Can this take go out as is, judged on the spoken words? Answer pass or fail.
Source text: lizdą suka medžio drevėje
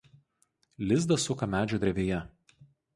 pass